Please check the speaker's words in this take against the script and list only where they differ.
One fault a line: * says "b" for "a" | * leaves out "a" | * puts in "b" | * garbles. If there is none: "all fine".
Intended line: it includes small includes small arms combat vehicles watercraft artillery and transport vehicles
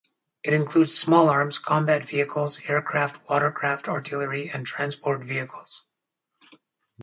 * leaves out "includes small"
* puts in "aircraft"